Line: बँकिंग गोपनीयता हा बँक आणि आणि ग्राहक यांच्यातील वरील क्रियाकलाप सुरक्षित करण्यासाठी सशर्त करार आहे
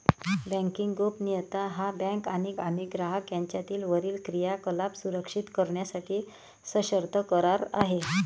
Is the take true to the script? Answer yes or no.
yes